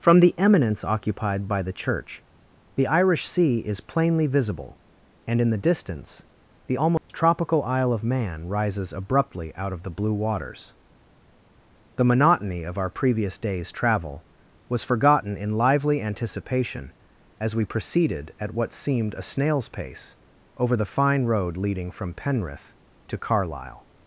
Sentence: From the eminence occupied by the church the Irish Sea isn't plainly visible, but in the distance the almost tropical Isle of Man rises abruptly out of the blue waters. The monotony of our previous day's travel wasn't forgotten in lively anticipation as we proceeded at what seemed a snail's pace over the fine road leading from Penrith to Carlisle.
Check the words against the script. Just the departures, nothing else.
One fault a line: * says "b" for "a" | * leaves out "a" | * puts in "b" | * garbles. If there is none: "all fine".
* says "is" for "isn't"
* says "and" for "but"
* says "was" for "wasn't"